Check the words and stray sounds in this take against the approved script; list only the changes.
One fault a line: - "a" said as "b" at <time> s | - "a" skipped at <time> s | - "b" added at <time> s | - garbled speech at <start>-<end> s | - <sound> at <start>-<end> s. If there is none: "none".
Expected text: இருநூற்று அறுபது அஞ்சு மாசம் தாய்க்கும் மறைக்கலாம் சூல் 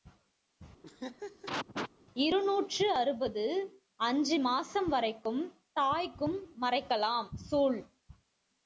- laugh at 0.8-1.9 s
- "வரைக்கும்" added at 4.9 s